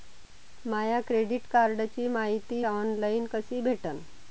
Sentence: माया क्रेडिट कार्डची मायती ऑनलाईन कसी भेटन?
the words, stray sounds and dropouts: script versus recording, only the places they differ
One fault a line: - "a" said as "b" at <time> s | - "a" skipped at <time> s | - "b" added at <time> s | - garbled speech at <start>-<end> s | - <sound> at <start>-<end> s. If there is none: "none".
none